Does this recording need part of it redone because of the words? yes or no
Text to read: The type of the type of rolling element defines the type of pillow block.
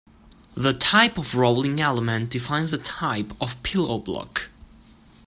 yes